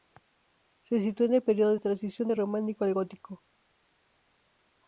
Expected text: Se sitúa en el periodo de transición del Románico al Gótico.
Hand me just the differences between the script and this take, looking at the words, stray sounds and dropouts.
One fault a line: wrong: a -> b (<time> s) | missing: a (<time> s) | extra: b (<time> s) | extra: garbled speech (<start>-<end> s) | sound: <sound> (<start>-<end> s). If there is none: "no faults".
no faults